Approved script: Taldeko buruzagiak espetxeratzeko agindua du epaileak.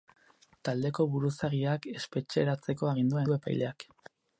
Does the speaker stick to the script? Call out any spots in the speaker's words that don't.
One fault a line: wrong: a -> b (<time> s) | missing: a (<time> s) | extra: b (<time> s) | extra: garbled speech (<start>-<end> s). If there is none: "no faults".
no faults